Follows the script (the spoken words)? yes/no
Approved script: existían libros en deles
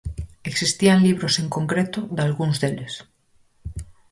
no